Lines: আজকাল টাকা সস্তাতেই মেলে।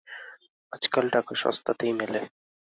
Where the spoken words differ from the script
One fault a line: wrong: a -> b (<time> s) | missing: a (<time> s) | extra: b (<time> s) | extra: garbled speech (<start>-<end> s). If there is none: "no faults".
no faults